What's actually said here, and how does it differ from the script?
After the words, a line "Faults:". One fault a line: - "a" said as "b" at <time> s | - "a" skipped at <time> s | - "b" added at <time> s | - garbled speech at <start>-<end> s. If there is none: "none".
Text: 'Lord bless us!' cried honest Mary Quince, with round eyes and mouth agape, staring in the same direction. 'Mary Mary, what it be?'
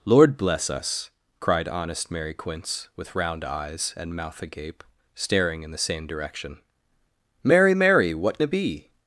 'Lord bless us!' cried honest Mary Quince, with round eyes and mouth agape, staring in the same direction. 'Mary Mary, what it be?'
Faults:
none